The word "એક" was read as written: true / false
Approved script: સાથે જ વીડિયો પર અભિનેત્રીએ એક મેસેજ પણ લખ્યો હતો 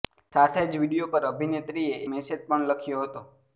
false